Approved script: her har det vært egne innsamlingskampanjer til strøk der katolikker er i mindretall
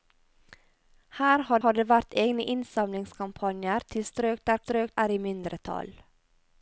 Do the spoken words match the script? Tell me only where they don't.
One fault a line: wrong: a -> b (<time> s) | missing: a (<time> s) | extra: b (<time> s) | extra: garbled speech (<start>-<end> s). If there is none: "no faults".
extra: har (1.6 s)
wrong: katolikker -> strøk (4.6 s)